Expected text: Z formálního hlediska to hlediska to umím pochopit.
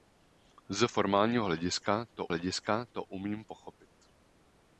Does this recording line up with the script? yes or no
yes